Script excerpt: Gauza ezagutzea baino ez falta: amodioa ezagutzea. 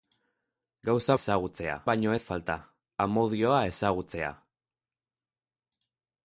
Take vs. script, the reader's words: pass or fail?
pass